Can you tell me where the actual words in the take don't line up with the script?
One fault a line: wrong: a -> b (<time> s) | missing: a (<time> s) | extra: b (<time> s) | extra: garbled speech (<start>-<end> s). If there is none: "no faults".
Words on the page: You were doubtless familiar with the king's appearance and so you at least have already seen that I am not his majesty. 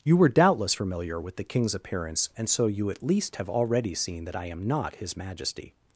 no faults